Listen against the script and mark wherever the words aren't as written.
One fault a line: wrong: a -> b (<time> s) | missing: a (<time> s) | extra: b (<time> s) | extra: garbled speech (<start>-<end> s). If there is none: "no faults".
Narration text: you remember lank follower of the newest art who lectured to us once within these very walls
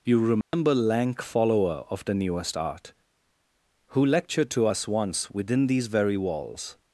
no faults